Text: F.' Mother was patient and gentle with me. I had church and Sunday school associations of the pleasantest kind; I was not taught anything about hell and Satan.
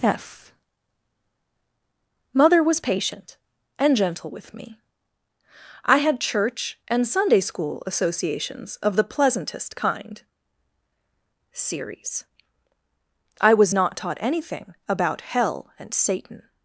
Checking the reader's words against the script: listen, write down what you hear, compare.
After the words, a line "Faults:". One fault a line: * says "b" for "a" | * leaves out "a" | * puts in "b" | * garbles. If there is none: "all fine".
F.' Mother was patient and gentle with me. I had church and Sunday school associations of the pleasantest kind; series I was not taught anything about hell and Satan.
Faults:
* puts in "series"